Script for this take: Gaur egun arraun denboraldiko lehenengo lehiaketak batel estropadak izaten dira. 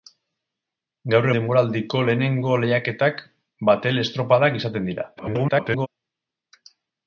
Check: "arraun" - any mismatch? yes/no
yes